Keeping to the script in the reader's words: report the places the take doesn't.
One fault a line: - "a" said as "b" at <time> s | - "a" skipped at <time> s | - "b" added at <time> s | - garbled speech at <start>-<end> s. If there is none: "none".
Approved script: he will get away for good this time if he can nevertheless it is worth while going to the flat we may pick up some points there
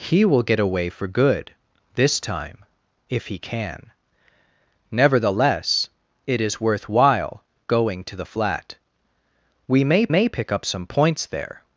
- "may" added at 10.1 s